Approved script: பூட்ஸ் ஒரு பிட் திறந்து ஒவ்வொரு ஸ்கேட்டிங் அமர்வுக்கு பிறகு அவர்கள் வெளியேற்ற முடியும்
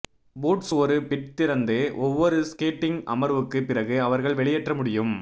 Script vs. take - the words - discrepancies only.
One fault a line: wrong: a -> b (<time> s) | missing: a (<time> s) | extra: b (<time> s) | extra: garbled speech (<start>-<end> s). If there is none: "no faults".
no faults